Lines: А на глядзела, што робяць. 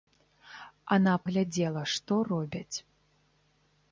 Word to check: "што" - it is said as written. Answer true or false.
true